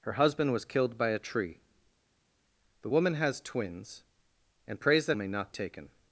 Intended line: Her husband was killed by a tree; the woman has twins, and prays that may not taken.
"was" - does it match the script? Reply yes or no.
yes